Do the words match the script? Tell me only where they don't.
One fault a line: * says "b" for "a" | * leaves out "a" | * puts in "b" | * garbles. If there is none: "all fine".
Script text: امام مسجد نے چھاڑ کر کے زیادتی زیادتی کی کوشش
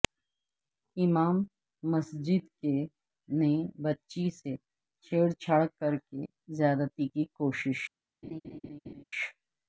* puts in "بچی سے چھیڑ"
* leaves out "زیادتی"